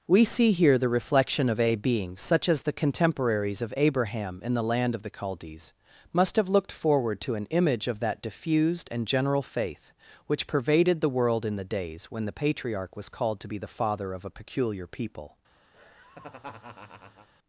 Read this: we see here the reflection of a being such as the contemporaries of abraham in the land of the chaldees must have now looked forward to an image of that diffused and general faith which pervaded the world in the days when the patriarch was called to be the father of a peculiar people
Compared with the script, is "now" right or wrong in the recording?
wrong